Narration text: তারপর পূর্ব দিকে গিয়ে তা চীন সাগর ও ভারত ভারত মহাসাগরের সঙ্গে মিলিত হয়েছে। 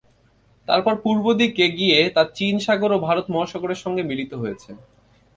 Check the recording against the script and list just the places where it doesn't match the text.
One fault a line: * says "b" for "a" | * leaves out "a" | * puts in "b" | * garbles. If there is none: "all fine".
* leaves out "ভারত"